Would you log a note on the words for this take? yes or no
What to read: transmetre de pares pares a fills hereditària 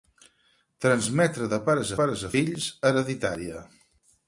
no